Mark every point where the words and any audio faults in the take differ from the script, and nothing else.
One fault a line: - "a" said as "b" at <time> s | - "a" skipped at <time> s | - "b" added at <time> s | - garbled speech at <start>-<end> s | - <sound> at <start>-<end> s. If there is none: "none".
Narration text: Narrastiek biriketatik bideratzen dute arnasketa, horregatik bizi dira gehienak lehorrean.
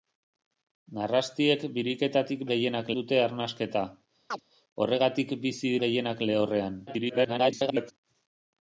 - "bideratzen" said as "gehienak" at 2.5 s
- chirp at 4.3-4.4 s
- "dira" skipped at 5.8 s
- garbled speech at 6.9-7.9 s